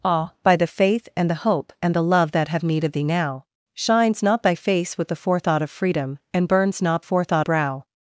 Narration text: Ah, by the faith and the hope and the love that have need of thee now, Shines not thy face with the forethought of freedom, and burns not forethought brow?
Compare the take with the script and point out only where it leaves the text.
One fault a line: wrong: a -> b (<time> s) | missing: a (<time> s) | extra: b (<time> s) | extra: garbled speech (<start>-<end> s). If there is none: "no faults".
no faults